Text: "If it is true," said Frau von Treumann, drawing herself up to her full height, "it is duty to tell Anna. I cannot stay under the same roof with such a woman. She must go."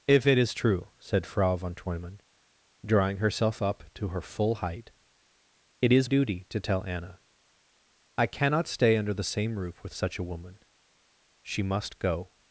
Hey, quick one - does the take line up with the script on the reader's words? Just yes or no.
yes